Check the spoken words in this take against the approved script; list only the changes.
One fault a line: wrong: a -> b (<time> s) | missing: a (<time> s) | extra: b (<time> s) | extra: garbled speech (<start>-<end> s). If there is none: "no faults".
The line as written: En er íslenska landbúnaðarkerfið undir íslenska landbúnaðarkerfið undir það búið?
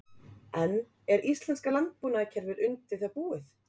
missing: íslenska landbúnaðarkerfið undir (3.0 s)